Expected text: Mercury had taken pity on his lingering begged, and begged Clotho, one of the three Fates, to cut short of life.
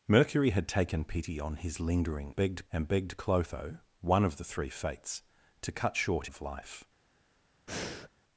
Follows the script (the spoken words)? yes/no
yes